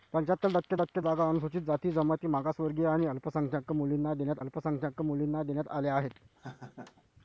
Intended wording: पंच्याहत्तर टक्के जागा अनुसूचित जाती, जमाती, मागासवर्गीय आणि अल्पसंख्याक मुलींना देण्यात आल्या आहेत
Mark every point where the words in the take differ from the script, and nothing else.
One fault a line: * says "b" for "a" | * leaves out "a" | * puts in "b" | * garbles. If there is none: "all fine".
* puts in "टक्के"
* puts in "अल्पसंख्याक मुलींना देण्यात"